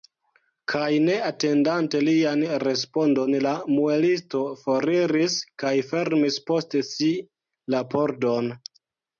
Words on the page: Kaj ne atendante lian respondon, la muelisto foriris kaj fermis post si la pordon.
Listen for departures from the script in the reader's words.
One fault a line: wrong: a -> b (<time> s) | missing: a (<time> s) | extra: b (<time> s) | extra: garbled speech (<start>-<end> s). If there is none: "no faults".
no faults